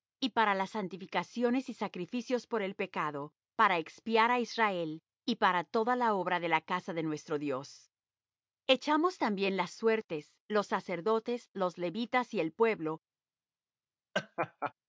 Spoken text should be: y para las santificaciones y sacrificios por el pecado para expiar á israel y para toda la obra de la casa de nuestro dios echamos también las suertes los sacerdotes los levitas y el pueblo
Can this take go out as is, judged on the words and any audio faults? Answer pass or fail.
fail